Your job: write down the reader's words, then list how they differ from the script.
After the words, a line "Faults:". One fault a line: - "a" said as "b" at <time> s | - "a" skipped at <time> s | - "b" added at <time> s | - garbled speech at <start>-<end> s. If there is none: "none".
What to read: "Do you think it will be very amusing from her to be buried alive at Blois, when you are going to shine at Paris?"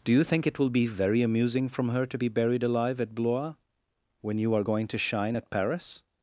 "Do you think it will be very amusing from her to be buried alive at Blois, when you are going to shine at Paris?"
Faults:
none